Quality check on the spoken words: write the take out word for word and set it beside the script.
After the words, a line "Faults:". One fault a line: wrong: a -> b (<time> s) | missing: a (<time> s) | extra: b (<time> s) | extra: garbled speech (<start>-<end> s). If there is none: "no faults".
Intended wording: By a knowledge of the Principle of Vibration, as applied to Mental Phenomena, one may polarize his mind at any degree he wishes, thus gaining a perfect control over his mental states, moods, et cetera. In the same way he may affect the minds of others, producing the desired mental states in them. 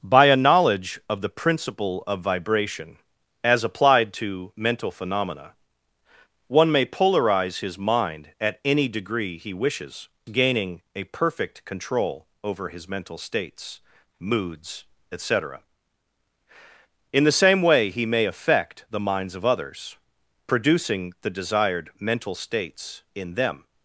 By a knowledge of the Principle of Vibration, as applied to Mental Phenomena, one may polarize his mind at any degree he wishes, gaining a perfect control over his mental states, moods, et cetera. In the same way he may affect the minds of others, producing the desired mental states in them.
Faults:
missing: thus (10.1 s)